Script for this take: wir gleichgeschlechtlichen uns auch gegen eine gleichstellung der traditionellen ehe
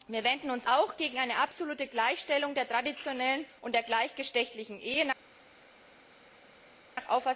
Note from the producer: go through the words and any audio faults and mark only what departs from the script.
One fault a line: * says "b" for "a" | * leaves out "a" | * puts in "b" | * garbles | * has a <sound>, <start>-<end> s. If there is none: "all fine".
* says "wenden" for "gleichgeschlechtlichen"
* puts in "absolute"
* puts in "und der gleichgeschlechtlichen"